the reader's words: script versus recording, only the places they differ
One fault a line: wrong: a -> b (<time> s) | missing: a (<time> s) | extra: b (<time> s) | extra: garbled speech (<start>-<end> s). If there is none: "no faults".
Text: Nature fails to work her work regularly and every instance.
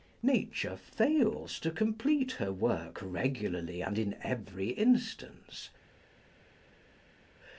wrong: work -> complete (1.7 s)
extra: in (4.0 s)